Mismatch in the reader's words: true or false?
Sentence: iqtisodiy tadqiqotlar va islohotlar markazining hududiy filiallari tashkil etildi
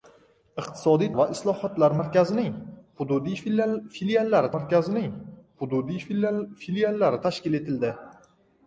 true